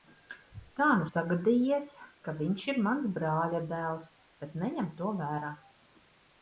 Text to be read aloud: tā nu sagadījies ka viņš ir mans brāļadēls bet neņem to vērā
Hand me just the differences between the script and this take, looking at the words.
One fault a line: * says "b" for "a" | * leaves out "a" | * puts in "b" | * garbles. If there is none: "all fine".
all fine